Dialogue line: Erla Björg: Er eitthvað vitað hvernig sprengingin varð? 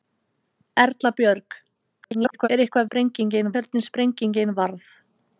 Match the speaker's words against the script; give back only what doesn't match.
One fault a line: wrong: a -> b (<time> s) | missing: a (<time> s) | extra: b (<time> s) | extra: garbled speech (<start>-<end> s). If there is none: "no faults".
extra: garbled speech (2.0-2.5 s)
wrong: vitað -> sprengingin (2.8 s)